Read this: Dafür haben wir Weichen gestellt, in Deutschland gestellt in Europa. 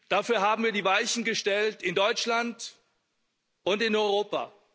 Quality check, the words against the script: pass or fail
fail